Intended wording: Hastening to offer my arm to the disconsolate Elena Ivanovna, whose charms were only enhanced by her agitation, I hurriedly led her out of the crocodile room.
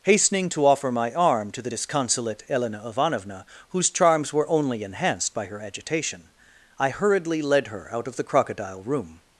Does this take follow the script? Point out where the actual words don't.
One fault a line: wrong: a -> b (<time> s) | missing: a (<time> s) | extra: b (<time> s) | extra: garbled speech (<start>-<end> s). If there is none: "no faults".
no faults